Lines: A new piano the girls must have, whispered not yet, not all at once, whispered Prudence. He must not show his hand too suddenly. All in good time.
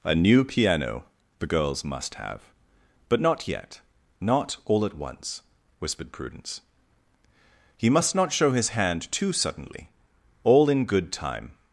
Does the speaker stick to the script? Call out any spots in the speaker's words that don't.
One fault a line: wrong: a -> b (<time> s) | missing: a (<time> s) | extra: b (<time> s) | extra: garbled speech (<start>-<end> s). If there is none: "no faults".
wrong: whispered -> but (3.1 s)